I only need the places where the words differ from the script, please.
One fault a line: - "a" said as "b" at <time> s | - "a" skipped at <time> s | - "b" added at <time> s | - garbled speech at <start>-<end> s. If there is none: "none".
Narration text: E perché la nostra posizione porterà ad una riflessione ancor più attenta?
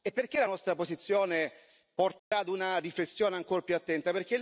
none